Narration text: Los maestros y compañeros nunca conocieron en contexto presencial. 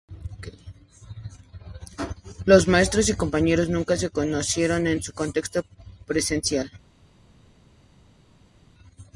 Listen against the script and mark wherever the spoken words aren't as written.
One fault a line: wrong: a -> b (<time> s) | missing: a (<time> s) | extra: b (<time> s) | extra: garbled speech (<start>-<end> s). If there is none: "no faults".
extra: se (4.0 s)
extra: un (5.0 s)